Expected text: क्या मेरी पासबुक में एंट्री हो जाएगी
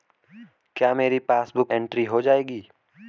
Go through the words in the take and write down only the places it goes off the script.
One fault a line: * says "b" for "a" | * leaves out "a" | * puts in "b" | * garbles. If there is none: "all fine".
* leaves out "में"